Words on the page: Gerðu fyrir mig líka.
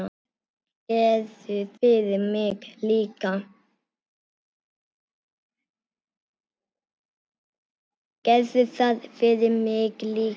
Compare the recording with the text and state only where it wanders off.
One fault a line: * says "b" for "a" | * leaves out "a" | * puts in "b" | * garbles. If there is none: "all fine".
all fine